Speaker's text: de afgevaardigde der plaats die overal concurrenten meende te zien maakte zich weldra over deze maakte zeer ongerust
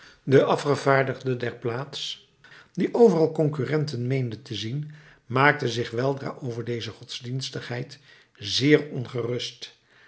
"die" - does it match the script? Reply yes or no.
yes